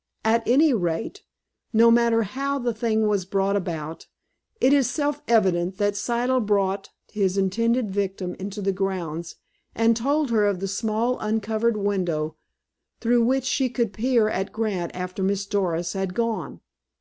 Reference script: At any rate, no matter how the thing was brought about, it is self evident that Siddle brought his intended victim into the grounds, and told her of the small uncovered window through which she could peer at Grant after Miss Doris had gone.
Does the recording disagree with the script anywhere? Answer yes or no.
no